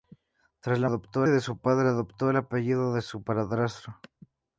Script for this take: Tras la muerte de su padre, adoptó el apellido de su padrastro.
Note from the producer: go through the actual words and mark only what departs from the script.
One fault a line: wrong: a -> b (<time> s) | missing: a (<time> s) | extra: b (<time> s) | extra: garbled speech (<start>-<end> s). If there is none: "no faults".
wrong: muerte -> adoptó (0.8 s)